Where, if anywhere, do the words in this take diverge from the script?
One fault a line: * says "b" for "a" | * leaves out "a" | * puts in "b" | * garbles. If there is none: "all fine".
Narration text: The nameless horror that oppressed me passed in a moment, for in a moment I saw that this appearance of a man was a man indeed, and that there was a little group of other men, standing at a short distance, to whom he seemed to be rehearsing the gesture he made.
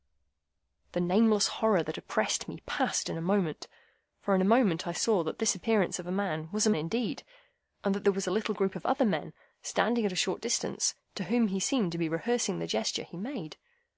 * leaves out "man"